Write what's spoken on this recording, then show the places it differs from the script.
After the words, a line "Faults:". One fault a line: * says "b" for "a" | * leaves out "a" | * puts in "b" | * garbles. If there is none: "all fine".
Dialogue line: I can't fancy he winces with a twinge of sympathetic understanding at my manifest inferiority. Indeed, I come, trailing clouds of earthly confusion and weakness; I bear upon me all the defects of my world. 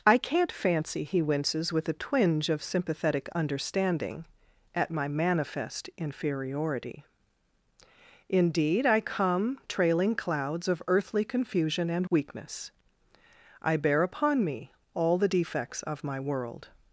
I can't fancy he winces with a twinge of sympathetic understanding at my manifest inferiority. Indeed, I come, trailing clouds of earthly confusion and weakness; I bear upon me all the defects of my world.
Faults:
all fine